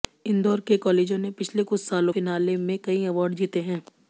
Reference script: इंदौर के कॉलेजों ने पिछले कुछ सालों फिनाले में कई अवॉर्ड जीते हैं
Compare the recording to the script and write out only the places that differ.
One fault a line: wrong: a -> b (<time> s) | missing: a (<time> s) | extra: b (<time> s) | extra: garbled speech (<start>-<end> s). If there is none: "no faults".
no faults